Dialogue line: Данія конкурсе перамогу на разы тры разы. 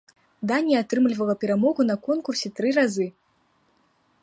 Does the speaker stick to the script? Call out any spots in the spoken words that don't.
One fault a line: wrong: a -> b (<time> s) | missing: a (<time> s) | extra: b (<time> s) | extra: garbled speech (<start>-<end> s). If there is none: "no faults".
wrong: конкурсе -> атрымлівала (0.8 s)
wrong: разы -> конкурсе (2.1 s)